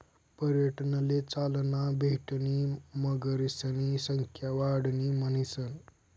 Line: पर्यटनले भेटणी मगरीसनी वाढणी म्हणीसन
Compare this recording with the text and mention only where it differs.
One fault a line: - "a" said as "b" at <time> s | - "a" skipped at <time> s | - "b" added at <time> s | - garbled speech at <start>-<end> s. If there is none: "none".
- "चालना" added at 1.2 s
- "संख्या" added at 4.1 s